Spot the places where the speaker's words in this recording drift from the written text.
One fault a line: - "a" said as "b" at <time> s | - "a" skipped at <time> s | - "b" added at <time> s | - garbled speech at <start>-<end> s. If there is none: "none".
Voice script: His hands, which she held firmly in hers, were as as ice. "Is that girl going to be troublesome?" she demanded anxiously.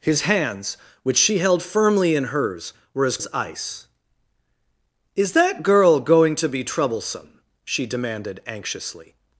none